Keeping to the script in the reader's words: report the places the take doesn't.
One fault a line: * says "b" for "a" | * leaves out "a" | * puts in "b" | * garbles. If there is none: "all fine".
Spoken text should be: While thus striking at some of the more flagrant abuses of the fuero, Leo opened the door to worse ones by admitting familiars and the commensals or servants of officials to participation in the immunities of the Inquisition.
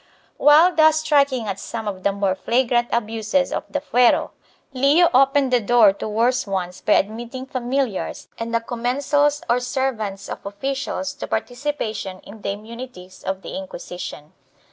all fine